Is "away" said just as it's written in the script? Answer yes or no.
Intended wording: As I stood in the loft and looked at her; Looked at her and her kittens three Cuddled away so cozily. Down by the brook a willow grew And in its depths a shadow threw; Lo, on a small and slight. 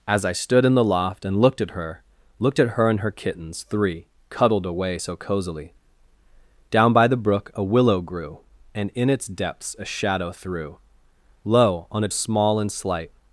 yes